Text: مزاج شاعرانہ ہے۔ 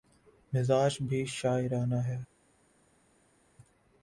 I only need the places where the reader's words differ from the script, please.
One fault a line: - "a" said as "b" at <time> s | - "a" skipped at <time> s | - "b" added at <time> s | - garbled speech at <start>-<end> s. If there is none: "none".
- "بھی" added at 1.0 s